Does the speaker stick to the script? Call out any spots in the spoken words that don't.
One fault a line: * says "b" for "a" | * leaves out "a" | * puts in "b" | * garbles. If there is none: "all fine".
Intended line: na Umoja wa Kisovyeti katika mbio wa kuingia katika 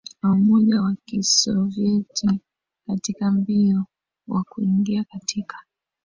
all fine